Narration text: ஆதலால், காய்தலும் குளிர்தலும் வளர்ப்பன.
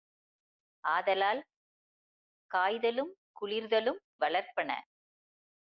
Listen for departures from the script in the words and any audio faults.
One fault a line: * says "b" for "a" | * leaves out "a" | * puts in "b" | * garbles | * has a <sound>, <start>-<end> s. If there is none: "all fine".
all fine